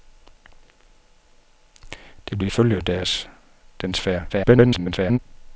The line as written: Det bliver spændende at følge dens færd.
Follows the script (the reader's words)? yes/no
no